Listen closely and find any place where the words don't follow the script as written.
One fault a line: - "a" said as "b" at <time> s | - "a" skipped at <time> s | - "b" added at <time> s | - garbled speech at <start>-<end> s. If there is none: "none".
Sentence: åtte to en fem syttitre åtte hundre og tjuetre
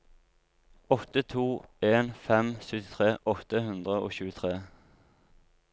none